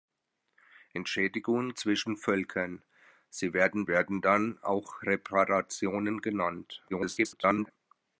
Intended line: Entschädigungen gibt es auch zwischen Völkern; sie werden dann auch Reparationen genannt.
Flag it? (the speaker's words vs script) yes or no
yes